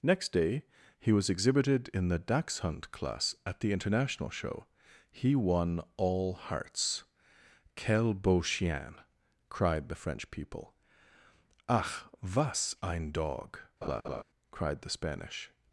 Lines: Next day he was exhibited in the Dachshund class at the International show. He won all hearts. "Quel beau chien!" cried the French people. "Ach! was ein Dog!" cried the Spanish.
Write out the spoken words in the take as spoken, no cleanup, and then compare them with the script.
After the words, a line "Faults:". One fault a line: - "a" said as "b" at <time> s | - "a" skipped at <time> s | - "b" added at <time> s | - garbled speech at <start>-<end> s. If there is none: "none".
Next day he was exhibited in the Dachshund class at the International show. He won all hearts. "Quel beau chien!" cried the French people. "Ach! was ein Dog!" cried the Spanish.
Faults:
none